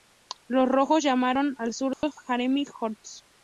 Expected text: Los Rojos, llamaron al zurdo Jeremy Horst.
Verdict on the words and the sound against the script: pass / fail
fail